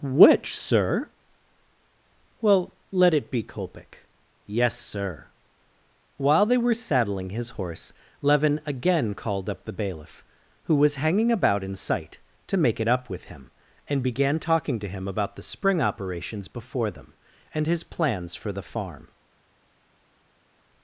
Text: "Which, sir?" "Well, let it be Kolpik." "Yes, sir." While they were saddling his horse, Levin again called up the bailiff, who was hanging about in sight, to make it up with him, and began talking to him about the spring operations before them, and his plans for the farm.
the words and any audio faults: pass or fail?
pass